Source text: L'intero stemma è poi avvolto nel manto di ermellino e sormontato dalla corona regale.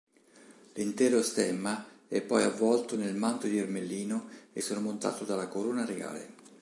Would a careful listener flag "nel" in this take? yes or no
no